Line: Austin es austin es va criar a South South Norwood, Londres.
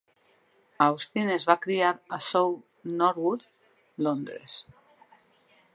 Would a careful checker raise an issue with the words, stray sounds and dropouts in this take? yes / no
yes